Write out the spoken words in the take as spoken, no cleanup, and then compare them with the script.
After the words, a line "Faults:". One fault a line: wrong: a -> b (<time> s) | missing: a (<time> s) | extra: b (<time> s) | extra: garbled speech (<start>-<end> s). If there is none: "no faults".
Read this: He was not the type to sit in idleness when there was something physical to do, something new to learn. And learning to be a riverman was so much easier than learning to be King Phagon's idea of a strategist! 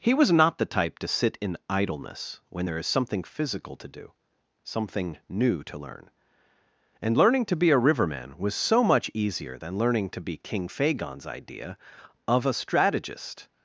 He was not the type to sit in idleness when there is something physical to do, something new to learn. And learning to be a riverman was so much easier than learning to be King Phagon's idea of a strategist!
Faults:
wrong: was -> is (2.8 s)